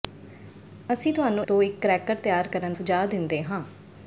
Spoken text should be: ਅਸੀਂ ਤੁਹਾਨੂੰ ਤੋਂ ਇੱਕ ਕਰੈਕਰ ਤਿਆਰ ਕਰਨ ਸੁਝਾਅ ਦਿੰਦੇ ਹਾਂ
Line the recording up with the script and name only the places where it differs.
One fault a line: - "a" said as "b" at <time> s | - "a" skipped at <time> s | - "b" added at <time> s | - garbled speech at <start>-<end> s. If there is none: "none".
none